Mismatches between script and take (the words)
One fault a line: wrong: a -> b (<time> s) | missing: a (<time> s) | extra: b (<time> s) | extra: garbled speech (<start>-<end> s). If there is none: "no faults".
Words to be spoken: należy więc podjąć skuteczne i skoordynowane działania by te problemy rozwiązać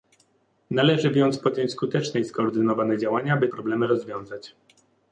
missing: te (3.5 s)